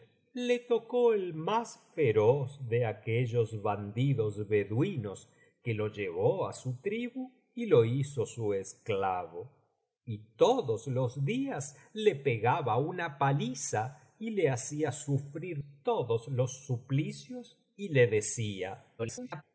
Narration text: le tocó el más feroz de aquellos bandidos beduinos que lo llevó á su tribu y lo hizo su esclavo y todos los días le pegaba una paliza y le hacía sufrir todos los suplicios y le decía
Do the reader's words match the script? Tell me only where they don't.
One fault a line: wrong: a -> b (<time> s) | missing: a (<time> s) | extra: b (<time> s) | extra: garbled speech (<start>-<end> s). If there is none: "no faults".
extra: garbled speech (19.0-19.4 s)